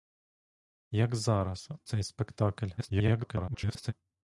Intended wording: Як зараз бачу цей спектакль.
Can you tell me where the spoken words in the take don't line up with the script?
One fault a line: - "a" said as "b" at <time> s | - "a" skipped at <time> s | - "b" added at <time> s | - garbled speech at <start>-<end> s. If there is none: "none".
- "бачу" skipped at 1.7 s
- garbled speech at 2.8-3.9 s